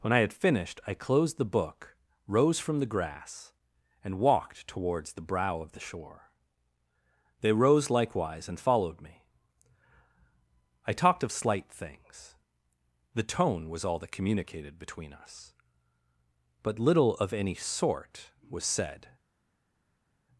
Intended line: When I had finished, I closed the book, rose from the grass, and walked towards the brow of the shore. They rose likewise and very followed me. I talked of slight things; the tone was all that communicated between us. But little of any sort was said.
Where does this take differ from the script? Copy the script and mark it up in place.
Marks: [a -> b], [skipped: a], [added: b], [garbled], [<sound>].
When I had finished, I closed the book, rose from the grass, and walked towards the brow of the shore. They rose likewise and [skipped: very] followed me. I talked of slight things; the tone was all that communicated between us. But little of any sort was said.